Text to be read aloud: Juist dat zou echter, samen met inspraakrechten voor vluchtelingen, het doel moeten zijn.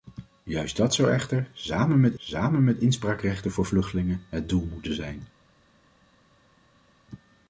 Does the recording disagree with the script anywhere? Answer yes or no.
yes